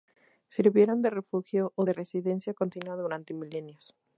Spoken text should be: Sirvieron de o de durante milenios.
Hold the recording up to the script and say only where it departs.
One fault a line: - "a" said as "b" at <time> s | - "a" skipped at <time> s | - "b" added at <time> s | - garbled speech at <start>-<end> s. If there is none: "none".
- "refugio" added at 1.1 s
- "residencia continua" added at 1.9 s